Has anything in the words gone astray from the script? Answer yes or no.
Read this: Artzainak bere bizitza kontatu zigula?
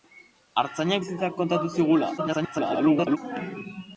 yes